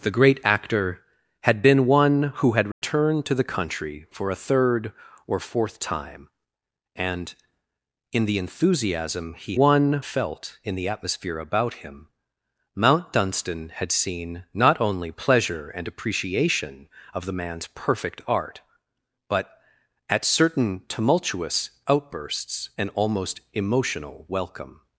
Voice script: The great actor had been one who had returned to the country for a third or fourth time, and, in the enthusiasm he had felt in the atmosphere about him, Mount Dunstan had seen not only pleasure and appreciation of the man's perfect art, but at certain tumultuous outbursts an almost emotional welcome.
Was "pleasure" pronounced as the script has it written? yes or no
yes